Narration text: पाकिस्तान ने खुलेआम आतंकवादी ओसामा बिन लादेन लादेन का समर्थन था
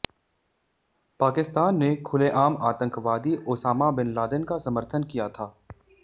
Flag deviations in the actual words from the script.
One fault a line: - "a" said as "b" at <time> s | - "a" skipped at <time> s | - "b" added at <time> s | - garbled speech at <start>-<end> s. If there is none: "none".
- "लादेन" skipped at 4.4 s
- "किया" added at 5.1 s